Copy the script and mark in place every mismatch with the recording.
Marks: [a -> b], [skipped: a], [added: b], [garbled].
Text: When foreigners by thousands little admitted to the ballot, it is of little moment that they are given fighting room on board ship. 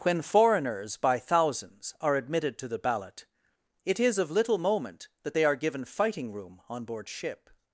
When foreigners by thousands [little -> are] admitted to the ballot, it is of little moment that they are given fighting room on board ship.